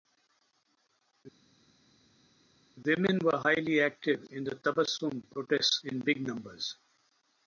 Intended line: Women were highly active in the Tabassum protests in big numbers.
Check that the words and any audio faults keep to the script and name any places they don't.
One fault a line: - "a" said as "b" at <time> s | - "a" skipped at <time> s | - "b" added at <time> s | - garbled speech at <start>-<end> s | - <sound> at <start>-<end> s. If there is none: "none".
none